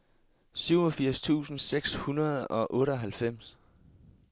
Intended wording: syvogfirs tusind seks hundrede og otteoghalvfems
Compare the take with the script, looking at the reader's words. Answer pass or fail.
pass